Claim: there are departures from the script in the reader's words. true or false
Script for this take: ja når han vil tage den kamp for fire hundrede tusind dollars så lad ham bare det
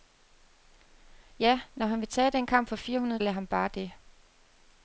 true